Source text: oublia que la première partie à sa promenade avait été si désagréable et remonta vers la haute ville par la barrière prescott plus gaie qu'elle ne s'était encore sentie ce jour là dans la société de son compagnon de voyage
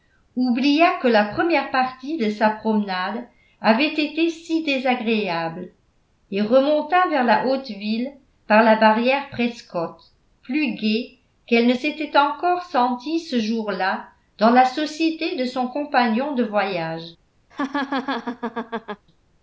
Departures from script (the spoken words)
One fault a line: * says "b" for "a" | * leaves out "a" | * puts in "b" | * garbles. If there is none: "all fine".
* says "de" for "à"